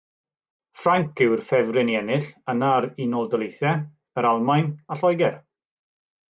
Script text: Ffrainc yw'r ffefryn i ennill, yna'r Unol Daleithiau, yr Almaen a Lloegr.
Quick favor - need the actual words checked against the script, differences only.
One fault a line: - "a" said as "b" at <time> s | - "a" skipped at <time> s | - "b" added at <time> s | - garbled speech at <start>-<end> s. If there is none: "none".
none